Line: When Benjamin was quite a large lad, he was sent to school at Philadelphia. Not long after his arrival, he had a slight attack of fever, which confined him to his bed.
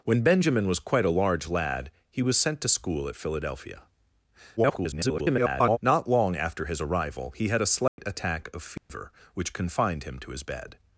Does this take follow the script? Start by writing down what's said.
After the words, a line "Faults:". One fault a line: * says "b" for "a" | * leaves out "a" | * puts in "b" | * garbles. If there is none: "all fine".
When Benjamin was quite a large lad, he was sent to school at Philadelphia. [garbled] Not long after his arrival, he had a slight attack of fever, which confined him to his bed.
Faults:
* garbles